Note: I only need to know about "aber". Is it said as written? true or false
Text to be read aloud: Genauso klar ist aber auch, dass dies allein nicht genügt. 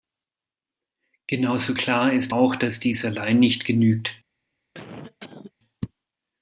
false